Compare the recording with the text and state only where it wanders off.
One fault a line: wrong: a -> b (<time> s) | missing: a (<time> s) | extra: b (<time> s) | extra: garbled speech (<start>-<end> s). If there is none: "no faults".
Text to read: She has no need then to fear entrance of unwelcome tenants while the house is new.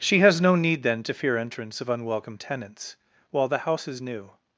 no faults